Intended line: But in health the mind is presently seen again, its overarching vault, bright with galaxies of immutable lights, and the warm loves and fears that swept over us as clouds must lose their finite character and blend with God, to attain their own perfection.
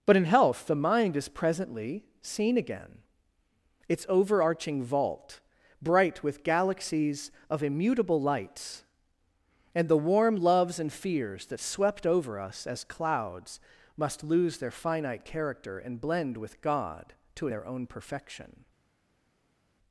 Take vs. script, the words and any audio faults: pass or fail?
fail